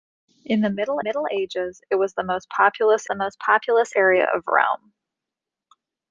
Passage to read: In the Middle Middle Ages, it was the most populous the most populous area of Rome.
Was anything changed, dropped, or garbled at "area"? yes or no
no